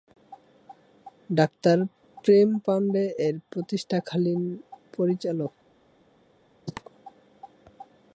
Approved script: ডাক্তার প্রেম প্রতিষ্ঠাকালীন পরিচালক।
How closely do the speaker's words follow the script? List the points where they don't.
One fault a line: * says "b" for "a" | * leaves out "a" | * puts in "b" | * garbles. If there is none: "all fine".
* puts in "পান্ডে এর"